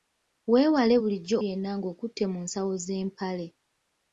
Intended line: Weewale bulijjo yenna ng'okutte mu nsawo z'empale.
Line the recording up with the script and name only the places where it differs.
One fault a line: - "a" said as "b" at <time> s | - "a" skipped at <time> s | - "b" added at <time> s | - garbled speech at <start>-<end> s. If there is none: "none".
none